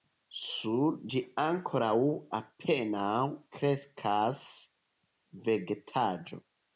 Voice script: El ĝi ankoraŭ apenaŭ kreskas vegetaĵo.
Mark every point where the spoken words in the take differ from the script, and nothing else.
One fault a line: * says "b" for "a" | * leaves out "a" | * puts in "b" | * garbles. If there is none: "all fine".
* says "Sur" for "El"